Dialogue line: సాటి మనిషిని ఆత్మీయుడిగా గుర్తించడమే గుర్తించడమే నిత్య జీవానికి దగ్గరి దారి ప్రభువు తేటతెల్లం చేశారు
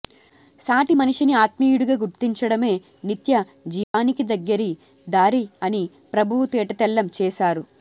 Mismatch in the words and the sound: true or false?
true